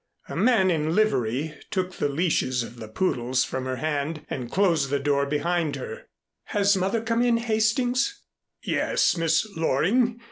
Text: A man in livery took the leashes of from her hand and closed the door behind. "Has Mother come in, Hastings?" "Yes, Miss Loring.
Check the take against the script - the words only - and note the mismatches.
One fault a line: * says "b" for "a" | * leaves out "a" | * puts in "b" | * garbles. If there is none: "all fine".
* puts in "the poodles"
* puts in "her"